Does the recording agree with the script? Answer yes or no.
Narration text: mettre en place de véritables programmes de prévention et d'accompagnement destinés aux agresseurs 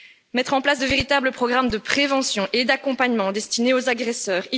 yes